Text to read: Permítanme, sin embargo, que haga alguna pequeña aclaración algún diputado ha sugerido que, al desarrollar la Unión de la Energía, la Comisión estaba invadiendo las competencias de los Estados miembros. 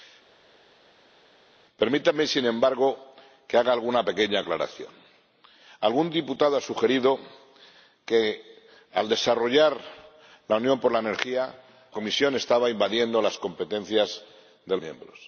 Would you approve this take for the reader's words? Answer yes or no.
no